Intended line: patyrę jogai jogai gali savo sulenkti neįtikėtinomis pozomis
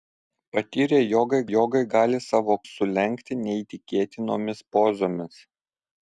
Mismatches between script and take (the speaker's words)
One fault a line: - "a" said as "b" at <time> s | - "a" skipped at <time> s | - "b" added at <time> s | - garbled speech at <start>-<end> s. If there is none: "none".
none